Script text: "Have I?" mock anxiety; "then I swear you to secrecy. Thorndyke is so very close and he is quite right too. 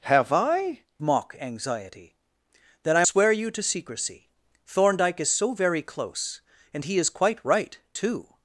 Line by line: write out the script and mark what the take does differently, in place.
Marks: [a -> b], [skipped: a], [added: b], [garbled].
"Have I?" mock anxiety; "then I swear you to secrecy. Thorndyke is so very close and he is quite right too.